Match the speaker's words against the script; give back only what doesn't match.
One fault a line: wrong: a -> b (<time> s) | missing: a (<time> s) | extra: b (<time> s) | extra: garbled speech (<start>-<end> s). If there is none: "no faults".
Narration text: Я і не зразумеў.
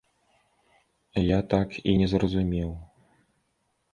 extra: так (1.5 s)